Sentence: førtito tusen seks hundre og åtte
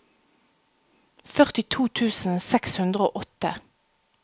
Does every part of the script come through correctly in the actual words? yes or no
yes